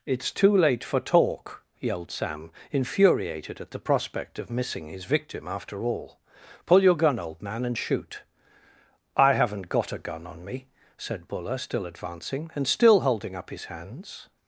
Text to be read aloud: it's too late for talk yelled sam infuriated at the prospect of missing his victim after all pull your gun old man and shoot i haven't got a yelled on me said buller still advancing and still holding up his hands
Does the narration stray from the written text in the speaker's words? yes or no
yes